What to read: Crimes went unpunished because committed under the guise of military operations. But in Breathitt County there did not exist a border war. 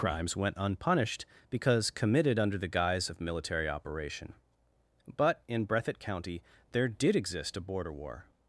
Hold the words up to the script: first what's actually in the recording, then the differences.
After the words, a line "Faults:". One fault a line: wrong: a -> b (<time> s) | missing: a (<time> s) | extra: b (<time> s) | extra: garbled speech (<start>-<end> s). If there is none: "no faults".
Crimes went unpunished because committed under the guise of military operation. But in Breathitt County there did exist a border war.
Faults:
wrong: operations -> operation (3.7 s)
missing: not (7.1 s)